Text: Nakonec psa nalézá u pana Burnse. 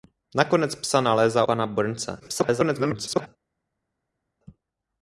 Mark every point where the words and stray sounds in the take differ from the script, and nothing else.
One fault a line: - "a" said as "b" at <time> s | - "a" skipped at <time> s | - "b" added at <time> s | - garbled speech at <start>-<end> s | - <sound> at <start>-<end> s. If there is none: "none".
- "u" skipped at 1.4 s
- garbled speech at 2.2-3.3 s